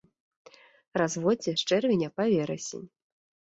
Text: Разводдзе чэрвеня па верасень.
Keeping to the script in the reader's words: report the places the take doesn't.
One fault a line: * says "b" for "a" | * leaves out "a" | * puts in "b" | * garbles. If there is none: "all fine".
* puts in "з"